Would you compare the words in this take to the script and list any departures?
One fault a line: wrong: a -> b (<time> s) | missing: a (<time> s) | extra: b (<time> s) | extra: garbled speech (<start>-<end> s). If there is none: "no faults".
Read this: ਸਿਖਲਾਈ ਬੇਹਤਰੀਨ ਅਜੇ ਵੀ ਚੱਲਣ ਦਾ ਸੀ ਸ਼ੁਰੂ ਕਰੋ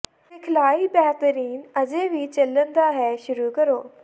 wrong: ਸੀ -> ਹੈ (2.9 s)